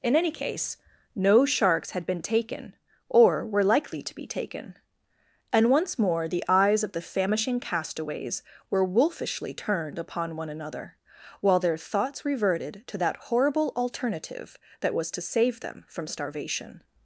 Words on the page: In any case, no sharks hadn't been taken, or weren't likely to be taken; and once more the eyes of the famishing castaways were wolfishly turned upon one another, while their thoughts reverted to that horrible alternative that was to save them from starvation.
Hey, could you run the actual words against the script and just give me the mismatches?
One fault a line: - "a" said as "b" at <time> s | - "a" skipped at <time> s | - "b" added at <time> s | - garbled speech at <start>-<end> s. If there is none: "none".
- "hadn't" said as "had" at 1.9 s
- "weren't" said as "were" at 3.5 s